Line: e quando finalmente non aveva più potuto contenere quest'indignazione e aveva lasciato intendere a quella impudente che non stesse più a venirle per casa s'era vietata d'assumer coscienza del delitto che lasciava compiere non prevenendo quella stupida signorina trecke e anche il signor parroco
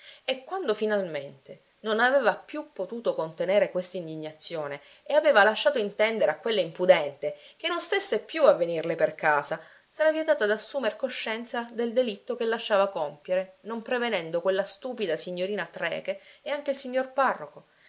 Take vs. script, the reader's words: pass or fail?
pass